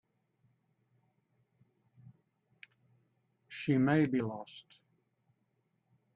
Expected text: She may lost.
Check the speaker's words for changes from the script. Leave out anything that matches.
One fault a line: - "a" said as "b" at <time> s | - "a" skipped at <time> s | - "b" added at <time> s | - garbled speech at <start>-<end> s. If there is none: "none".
- "be" added at 4.1 s